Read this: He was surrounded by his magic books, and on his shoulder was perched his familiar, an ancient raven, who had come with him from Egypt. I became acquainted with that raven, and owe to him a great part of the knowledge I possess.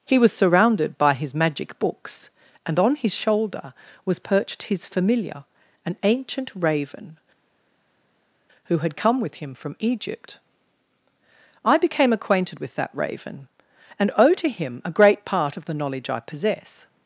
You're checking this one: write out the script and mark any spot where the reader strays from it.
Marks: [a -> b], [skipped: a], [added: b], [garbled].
He was surrounded by his magic books, and on his shoulder was perched his familiar, an ancient raven, who had come with him from Egypt. I became acquainted with that raven, and owe to him a great part of the knowledge I possess.